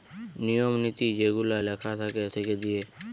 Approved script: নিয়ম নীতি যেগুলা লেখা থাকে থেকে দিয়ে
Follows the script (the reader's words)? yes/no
yes